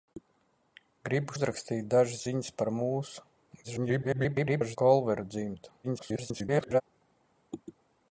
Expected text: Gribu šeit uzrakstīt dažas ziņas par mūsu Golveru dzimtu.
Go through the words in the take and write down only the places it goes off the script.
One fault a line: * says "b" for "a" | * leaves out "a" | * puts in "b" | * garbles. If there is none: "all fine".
* leaves out "šeit"
* garbles
* garbles